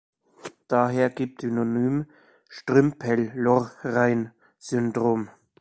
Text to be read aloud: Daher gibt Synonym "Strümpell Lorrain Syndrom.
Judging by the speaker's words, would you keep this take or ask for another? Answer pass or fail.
pass